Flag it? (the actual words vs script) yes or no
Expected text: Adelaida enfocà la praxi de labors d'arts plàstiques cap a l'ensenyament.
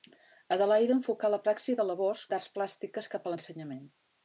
no